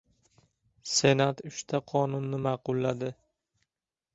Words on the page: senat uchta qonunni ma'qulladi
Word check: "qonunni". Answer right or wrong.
right